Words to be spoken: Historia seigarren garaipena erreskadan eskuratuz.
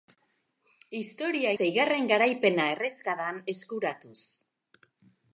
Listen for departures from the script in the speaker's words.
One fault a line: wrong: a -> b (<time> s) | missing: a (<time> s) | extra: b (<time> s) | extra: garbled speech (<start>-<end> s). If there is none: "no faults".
no faults